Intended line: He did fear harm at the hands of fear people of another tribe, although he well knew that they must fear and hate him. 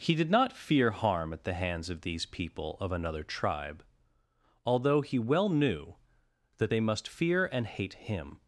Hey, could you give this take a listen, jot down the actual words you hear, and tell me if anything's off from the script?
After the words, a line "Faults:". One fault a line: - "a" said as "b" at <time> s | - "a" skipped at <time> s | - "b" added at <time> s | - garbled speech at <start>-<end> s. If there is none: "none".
He did not fear harm at the hands of these people of another tribe, although he well knew that they must fear and hate him.
Faults:
- "not" added at 0.3 s
- "fear" said as "these" at 2.0 s